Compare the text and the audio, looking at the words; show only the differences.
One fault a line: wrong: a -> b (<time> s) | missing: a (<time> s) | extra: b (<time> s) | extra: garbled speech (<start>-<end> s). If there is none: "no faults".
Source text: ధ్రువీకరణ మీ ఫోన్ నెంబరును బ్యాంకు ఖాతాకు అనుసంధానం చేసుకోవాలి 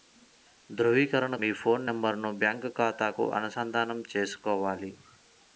no faults